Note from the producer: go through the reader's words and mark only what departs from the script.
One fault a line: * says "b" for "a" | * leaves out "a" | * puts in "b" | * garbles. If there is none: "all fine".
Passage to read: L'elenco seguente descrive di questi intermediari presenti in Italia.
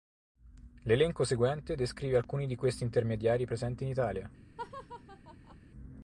* puts in "alcuni"